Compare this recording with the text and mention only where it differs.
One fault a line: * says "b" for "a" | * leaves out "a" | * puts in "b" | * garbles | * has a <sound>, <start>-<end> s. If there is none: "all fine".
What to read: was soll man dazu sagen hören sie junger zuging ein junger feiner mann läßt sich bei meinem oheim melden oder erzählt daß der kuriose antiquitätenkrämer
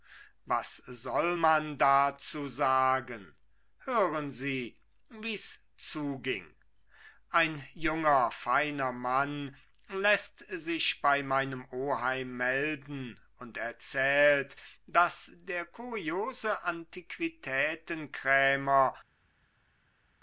* says "wie's" for "junger"
* says "und" for "oder"